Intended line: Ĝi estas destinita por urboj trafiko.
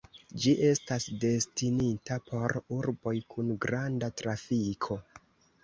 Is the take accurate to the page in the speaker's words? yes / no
no